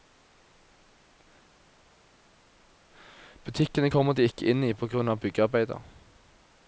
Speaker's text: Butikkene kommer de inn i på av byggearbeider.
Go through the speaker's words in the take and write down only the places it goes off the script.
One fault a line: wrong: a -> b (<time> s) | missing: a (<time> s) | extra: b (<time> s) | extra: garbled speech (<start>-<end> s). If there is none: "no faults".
extra: ikke (4.3 s)
extra: grunn (4.9 s)